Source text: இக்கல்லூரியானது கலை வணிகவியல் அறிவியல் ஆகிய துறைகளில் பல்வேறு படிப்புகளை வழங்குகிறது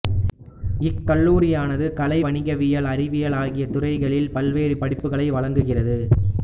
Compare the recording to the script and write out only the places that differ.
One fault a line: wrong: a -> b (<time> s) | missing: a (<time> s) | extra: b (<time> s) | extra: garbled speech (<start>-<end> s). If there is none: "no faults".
no faults